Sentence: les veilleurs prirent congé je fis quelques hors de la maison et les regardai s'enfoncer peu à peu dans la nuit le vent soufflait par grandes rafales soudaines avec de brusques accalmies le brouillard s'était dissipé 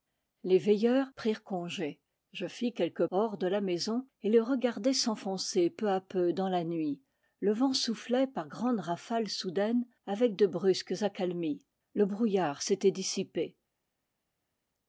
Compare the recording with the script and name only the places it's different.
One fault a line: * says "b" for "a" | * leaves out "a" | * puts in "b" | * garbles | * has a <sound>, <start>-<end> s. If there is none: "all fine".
all fine